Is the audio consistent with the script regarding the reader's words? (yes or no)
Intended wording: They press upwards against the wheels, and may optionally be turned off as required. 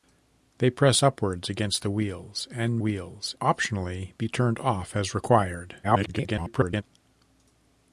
no